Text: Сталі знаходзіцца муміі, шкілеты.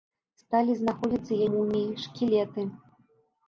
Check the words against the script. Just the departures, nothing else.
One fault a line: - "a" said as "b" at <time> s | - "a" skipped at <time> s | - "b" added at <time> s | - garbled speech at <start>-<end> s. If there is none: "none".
none